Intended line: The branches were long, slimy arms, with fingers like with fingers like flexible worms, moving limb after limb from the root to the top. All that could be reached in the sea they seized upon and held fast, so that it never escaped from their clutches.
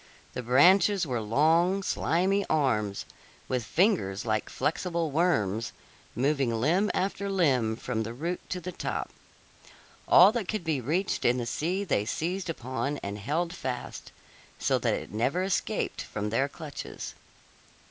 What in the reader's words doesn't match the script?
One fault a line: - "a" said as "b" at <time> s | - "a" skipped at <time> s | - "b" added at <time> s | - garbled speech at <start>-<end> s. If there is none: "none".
- "with fingers like" skipped at 4.5 s